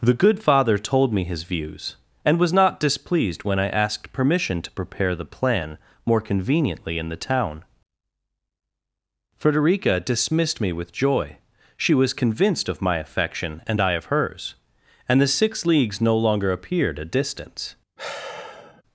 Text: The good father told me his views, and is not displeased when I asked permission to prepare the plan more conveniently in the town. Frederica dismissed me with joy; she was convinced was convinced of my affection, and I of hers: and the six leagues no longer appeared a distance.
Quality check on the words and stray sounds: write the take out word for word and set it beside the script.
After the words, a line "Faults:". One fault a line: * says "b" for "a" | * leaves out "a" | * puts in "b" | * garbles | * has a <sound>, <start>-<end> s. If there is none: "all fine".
The good father told me his views, and was not displeased when I asked permission to prepare the plan more conveniently in the town. Frederica dismissed me with joy; she was convinced of my affection, and I of hers: and the six leagues no longer appeared a distance.
Faults:
* says "was" for "is"
* leaves out "was convinced"
* has a sigh, 18.0-18.8 s